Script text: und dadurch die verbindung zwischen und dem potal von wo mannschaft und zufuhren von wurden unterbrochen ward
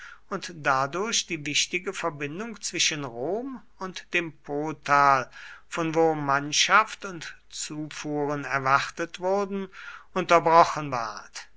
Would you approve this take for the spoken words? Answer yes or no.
no